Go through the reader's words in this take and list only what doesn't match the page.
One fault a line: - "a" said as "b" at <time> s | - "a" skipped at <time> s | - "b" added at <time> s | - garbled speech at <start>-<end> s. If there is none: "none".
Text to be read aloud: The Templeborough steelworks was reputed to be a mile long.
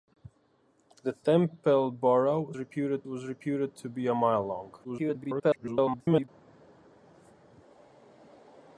- "steelworks" said as "reputed" at 2.6 s
- garbled speech at 4.8-6.3 s